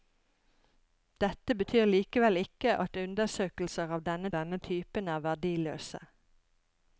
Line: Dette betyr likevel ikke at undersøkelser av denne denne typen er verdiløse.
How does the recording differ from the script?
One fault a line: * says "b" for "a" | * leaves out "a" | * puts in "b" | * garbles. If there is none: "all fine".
all fine